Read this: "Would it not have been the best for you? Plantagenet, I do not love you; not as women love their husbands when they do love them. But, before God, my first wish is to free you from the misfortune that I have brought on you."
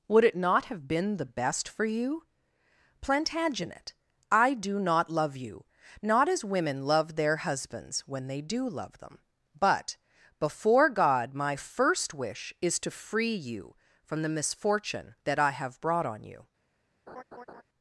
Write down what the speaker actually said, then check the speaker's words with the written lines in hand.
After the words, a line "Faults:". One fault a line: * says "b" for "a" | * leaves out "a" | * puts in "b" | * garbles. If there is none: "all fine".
"Would it not have been the best for you? Plantagenet, I do not love you; not as women love their husbands when they do love them. But, before God, my first wish is to free you from the misfortune that I have brought on you."
Faults:
all fine